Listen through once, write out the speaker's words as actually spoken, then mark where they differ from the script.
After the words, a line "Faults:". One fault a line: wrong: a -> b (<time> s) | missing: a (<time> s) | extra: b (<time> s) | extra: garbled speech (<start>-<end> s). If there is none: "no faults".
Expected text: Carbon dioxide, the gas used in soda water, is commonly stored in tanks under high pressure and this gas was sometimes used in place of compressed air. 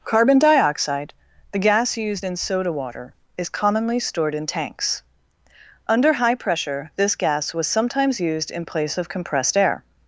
Carbon dioxide, the gas used in soda water, is commonly stored in tanks under high pressure this gas was sometimes used in place of compressed air.
Faults:
missing: and (6.9 s)